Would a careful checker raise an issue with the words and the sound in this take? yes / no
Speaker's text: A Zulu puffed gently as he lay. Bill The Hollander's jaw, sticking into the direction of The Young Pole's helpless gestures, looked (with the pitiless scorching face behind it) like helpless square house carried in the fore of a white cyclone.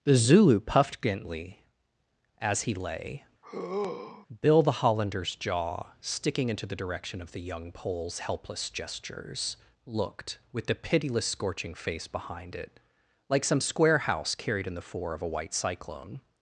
yes